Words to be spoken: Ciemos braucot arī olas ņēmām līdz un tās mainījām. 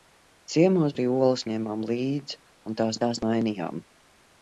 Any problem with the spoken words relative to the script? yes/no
yes